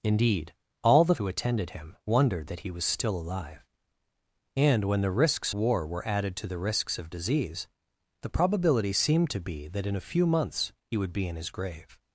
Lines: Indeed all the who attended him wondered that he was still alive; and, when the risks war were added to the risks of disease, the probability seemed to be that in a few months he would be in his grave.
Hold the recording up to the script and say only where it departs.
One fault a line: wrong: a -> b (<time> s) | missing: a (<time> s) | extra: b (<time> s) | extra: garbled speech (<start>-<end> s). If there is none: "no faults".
no faults